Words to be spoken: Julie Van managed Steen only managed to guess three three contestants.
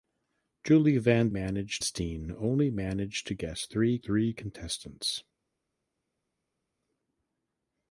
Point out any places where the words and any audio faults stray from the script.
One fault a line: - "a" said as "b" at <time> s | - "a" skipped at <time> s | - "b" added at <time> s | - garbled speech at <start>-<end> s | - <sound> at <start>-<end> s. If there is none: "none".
none